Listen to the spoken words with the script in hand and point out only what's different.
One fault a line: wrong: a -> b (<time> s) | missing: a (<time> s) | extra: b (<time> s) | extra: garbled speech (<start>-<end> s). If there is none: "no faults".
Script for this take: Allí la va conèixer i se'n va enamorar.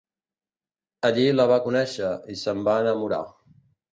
no faults